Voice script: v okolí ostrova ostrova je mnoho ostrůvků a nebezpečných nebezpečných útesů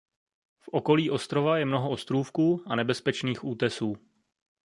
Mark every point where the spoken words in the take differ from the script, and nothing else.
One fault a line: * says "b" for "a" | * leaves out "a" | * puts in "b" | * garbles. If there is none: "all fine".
* leaves out "ostrova"
* leaves out "nebezpečných"